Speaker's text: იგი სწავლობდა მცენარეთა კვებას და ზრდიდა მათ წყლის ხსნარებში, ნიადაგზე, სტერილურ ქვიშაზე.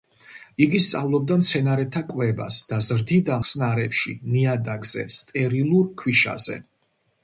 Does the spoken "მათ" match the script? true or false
false